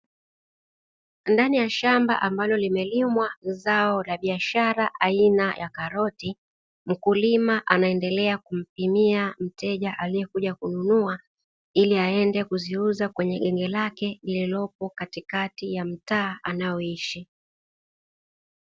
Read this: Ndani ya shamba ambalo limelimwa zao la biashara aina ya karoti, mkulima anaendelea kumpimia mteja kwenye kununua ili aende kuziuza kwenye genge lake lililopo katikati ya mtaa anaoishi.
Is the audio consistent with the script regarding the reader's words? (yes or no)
no